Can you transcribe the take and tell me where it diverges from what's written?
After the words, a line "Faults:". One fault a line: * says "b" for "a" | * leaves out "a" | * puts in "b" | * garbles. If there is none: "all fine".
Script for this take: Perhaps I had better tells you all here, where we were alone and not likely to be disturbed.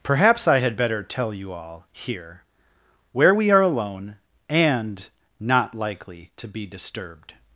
Perhaps I had better tell you all here, where we are alone and not likely to be disturbed.
Faults:
* says "tell" for "tells"
* says "are" for "were"